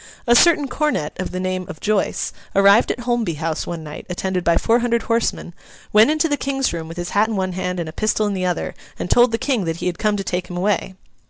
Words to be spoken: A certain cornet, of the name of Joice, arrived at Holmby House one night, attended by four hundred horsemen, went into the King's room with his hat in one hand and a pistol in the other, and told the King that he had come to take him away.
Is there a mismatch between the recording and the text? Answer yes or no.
no